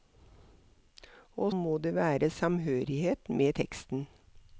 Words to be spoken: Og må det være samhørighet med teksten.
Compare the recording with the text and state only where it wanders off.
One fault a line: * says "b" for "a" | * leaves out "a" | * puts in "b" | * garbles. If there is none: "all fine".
all fine